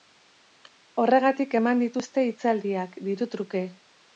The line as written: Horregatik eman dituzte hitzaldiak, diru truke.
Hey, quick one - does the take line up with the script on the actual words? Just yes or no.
yes